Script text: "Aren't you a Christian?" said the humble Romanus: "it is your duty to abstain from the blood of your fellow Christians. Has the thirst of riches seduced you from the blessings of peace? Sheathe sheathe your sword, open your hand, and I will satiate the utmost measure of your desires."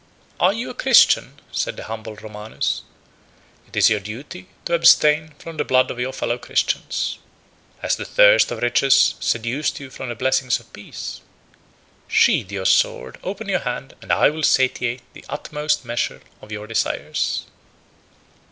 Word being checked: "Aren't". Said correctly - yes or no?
no